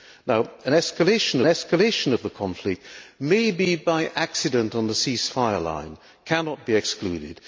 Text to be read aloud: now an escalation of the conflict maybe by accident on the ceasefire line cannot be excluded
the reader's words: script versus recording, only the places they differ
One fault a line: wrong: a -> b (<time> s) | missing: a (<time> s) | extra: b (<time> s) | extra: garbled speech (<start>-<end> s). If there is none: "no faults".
extra: escalation (1.5 s)